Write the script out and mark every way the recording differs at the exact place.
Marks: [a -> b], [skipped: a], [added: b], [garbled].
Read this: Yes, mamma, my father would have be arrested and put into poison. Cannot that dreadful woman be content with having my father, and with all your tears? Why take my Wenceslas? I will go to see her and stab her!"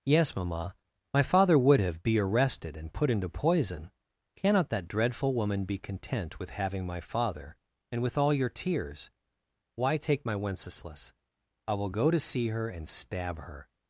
Yes, mamma, my father would have be arrested and put into poison. Cannot that dreadful woman be content with having my father, and with all your tears? Why take my Wenceslas? I will go to see her and stab her!"